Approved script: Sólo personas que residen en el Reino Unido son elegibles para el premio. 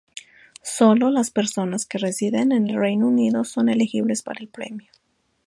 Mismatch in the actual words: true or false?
true